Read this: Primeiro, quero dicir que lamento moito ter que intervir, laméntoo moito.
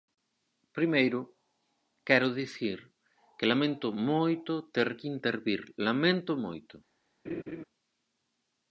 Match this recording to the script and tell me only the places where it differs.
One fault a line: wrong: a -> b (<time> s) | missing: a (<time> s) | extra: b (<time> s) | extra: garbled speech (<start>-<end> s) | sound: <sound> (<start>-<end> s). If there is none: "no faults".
sound: laugh (7.2-7.6 s)